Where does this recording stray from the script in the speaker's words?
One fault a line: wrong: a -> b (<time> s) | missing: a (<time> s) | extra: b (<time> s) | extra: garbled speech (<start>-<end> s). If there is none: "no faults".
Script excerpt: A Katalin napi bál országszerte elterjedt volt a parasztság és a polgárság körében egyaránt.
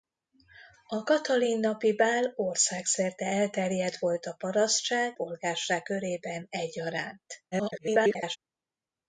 missing: és a (5.2 s)
extra: garbled speech (7.5-8.4 s)